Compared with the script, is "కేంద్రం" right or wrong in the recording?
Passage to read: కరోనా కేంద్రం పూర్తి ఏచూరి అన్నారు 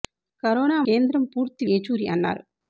right